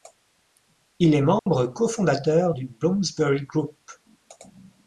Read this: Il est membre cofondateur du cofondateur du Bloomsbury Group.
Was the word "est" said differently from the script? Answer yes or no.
no